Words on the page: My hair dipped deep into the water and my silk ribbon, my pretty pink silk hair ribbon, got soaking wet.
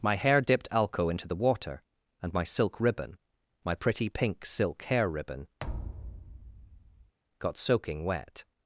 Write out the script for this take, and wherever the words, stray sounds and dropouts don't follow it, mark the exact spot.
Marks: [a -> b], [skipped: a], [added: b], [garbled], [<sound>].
My hair dipped [deep -> alco] into the water and my silk ribbon, my pretty pink silk hair ribbon, [thud] got soaking wet.